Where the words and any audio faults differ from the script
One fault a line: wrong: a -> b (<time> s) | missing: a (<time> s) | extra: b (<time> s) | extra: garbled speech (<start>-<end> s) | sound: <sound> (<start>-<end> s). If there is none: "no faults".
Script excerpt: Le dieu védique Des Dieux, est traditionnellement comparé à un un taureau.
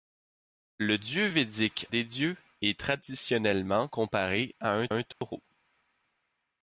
sound: dropout (5.1-5.2 s)